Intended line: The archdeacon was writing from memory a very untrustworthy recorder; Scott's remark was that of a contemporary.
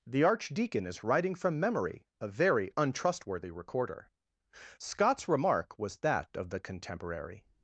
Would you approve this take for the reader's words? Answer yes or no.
no